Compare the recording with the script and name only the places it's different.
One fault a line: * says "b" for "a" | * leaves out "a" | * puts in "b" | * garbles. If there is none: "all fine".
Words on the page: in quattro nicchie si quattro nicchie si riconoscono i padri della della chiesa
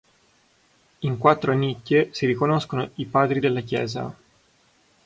* leaves out "quattro nicchie si"
* leaves out "della"